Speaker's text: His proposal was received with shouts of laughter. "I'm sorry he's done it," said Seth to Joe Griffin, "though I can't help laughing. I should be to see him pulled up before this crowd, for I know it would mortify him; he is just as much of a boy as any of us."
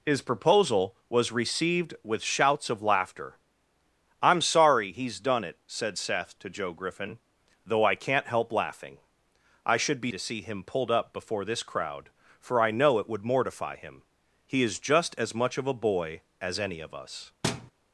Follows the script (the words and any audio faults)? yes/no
no